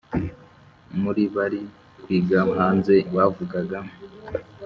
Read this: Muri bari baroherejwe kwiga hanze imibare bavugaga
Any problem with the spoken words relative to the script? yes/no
yes